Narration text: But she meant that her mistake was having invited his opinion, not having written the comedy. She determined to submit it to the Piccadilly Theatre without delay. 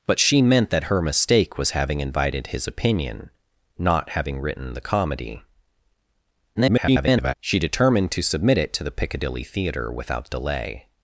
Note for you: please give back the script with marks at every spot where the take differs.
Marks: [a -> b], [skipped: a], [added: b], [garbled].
But she meant that her mistake was having invited his opinion, not having written the comedy. [garbled] She determined to submit it to the Piccadilly Theatre without delay.